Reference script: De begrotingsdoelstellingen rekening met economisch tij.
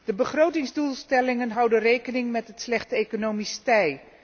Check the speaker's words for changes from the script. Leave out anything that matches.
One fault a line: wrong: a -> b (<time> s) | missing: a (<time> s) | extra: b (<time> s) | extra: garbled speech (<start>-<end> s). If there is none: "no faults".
extra: houden (1.5 s)
extra: het slechte (2.5 s)